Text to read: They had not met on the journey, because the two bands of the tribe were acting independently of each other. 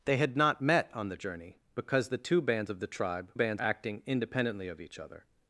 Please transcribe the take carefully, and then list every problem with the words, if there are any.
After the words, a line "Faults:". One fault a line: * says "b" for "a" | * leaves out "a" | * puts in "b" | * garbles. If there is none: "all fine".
They had not met on the journey, because the two bands of the tribe bands acting independently of each other.
Faults:
* says "bands" for "were"